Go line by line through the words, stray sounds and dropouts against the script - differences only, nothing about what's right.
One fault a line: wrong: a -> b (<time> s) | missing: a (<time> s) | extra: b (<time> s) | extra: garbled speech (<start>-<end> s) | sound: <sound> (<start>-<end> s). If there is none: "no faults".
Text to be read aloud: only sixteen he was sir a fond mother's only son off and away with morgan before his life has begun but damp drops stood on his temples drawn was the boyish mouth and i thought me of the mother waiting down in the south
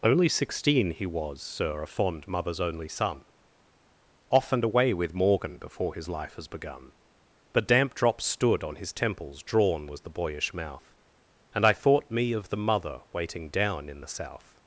no faults